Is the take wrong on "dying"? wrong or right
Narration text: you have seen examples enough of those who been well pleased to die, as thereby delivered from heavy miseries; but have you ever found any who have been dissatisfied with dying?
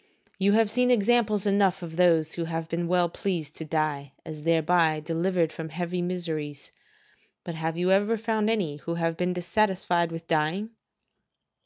right